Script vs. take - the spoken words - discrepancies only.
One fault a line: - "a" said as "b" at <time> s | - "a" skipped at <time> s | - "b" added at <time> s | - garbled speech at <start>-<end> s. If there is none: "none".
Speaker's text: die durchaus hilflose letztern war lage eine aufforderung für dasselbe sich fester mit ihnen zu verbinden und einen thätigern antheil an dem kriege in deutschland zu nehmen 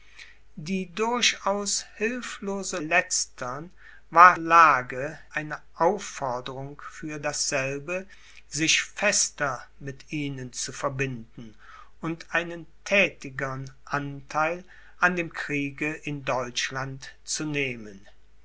none